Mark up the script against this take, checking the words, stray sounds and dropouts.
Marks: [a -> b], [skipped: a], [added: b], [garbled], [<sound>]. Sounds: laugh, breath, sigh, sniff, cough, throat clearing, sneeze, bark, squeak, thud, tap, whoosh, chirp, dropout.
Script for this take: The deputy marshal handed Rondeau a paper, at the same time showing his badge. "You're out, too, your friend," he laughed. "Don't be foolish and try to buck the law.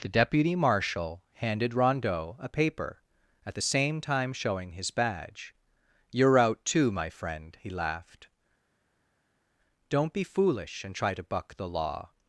The deputy marshal handed Rondeau a paper, at the same time showing his badge. "You're out, too, [your -> my] friend," he laughed. "Don't be foolish and try to buck the law.